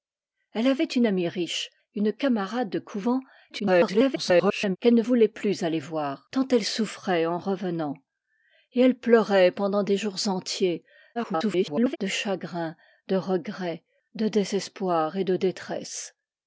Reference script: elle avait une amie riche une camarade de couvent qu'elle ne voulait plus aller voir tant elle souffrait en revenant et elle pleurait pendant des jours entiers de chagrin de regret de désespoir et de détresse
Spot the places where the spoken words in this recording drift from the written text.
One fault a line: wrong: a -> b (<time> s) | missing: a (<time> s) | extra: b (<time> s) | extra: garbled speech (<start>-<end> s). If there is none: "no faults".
extra: garbled speech (3.5-4.8 s)
extra: garbled speech (11.1-12.0 s)